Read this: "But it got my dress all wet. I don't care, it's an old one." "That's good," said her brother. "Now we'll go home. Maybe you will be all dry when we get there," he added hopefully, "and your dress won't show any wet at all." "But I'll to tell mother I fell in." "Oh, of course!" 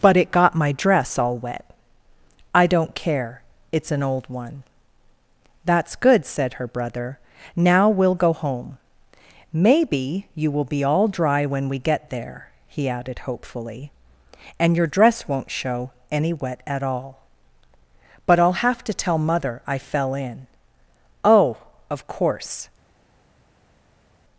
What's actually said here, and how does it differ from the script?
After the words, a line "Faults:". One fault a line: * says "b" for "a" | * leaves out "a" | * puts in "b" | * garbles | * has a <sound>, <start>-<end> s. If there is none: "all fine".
"But it got my dress all wet. I don't care, it's an old one." "That's good," said her brother. "Now we'll go home. Maybe you will be all dry when we get there," he added hopefully, "and your dress won't show any wet at all." "But I'll have to tell mother I fell in." "Oh, of course!"
Faults:
* puts in "have"